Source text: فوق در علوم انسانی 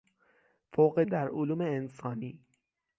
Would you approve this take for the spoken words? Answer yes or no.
yes